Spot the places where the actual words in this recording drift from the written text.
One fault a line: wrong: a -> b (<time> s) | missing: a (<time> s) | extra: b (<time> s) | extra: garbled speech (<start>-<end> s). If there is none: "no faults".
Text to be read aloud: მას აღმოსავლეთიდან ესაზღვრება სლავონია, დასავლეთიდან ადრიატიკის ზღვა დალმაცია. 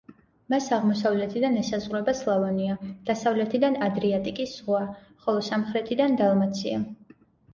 extra: ხოლო სამხრეთიდან (5.3 s)